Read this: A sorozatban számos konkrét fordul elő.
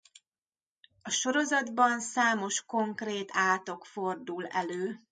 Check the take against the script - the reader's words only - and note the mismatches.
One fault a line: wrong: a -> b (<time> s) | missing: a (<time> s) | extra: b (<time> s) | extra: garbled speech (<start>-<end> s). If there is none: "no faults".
extra: átok (3.3 s)